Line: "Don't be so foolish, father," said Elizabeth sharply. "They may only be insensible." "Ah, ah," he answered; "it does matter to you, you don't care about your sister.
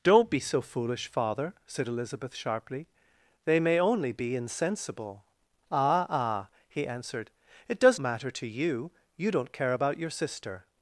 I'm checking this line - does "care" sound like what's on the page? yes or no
yes